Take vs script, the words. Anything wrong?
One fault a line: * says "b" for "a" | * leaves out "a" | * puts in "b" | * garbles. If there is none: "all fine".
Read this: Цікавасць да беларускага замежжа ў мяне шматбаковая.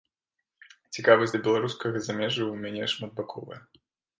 all fine